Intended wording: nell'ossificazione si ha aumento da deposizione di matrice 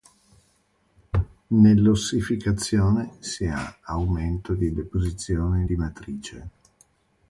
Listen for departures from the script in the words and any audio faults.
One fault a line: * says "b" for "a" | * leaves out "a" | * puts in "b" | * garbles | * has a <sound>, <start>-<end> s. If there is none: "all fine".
* says "di" for "da"